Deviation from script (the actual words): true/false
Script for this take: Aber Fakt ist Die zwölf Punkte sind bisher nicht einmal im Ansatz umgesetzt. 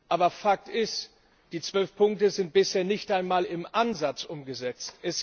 false